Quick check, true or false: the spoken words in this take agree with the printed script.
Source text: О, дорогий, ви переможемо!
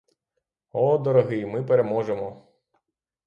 false